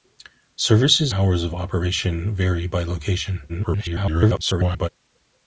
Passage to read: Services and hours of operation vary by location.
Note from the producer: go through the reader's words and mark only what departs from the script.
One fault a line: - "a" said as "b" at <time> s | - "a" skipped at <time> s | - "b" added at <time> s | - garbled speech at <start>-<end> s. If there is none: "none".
- "and" skipped at 1.1 s
- garbled speech at 3.5-4.9 s